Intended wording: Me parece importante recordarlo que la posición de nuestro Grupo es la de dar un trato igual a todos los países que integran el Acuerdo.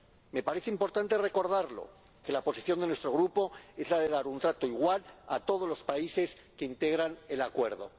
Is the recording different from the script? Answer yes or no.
no